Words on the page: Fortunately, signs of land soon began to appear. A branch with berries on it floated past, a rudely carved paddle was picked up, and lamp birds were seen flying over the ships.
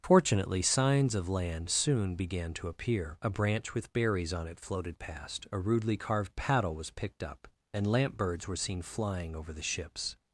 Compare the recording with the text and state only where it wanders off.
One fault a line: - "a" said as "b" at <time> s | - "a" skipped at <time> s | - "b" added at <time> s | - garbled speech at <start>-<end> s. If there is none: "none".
none